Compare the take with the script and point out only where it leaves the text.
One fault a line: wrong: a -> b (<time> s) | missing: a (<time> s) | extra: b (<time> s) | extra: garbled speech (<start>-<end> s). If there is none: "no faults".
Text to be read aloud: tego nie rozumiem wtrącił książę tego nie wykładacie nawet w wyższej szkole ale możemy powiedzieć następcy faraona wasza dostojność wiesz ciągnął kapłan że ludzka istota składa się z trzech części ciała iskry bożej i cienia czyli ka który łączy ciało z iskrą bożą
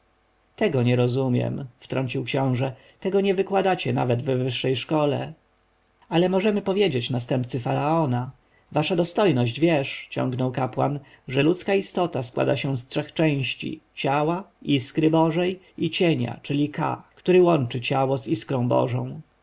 no faults